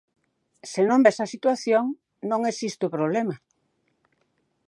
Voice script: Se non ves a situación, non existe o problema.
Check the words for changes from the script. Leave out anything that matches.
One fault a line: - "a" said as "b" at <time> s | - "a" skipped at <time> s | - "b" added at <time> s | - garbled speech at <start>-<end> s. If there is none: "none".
none